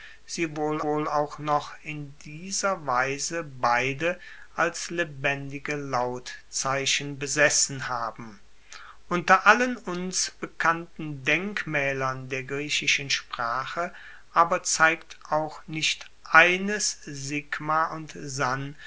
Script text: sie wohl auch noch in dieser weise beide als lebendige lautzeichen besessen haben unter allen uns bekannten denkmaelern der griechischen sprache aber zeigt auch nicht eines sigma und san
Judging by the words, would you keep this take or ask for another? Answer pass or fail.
fail